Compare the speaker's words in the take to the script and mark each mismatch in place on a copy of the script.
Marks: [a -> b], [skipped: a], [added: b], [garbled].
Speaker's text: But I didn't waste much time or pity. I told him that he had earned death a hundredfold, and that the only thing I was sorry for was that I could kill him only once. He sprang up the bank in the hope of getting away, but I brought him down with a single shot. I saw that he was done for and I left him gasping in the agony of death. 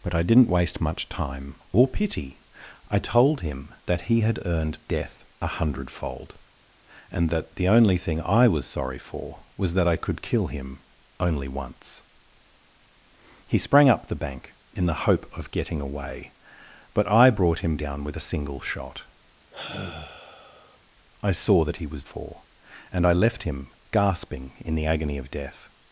But I didn't waste much time or pity. I told him that he had earned death a hundredfold, and that the only thing I was sorry for was that I could kill him only once. He sprang up the bank in the hope of getting away, but I brought him down with a single shot. I saw that he was [skipped: done] for and I left him gasping in the agony of death.